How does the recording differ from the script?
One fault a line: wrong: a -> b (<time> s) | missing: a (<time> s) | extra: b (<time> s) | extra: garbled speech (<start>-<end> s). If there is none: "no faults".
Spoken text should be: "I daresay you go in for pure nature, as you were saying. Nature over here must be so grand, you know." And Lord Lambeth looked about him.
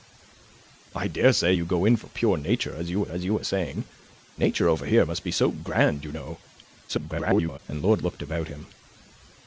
extra: as you were (3.1 s)
extra: garbled speech (6.9-7.6 s)
missing: Lambeth (8.0 s)